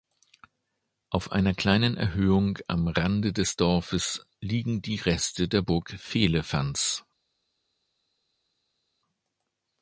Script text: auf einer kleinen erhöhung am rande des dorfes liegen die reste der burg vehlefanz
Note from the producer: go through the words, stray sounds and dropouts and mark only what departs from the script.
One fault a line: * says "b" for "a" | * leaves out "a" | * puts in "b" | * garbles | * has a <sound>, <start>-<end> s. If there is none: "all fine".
all fine